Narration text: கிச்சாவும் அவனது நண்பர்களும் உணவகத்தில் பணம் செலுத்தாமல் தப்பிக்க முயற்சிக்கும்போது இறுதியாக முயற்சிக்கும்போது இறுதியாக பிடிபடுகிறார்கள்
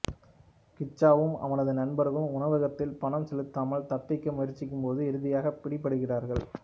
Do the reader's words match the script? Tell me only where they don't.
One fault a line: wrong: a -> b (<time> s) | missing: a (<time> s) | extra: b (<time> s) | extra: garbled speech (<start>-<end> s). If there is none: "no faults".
missing: முயற்சிக்கும்போது இறுதியாக (5.5 s)